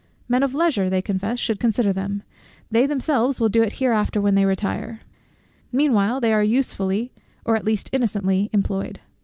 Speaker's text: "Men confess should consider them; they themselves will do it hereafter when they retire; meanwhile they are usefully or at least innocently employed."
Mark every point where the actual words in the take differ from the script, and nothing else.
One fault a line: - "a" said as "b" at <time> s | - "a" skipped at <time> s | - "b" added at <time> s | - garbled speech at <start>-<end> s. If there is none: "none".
- "of leisure they" added at 0.4 s